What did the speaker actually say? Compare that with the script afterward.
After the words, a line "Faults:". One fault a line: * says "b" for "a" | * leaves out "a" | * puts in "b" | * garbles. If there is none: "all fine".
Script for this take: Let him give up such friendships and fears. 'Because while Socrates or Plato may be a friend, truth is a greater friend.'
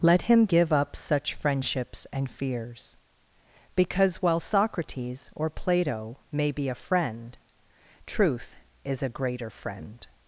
Let him give up such friendships and fears. 'Because while Socrates or Plato may be a friend, truth is a greater friend.'
Faults:
all fine